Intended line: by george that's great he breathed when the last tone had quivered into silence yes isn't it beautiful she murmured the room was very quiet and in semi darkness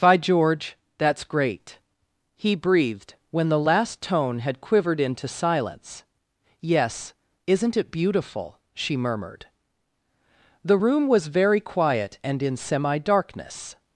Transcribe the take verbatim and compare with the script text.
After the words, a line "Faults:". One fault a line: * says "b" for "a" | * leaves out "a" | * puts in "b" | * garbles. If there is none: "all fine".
by george that's great he breathed when the last tone had quivered into silence yes isn't it beautiful she murmured the room was very quiet and in semi darkness
Faults:
all fine